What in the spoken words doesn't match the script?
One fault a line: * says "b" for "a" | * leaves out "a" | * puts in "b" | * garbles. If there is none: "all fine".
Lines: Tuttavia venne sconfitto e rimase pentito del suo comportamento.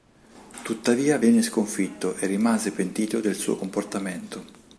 all fine